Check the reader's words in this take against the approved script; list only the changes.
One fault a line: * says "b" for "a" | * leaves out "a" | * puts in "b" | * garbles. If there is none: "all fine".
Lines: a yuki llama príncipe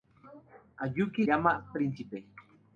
all fine